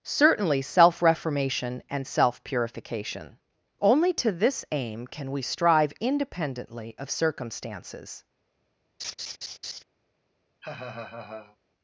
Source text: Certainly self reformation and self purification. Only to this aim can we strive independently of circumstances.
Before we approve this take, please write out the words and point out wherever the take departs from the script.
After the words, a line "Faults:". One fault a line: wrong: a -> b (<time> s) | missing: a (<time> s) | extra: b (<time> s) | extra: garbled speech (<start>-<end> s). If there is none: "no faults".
Certainly self reformation and self purification. Only to this aim can we strive independently of circumstances.
Faults:
no faults